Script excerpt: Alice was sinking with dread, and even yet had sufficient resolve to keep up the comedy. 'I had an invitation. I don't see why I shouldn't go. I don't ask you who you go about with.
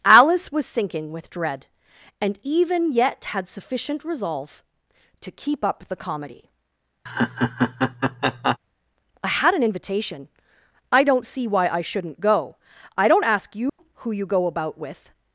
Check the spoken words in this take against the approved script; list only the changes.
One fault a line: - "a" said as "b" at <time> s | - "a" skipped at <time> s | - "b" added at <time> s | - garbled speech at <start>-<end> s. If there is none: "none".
none